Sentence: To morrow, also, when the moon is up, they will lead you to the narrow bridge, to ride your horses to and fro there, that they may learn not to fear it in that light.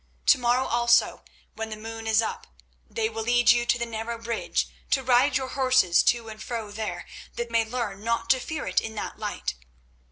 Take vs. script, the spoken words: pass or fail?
fail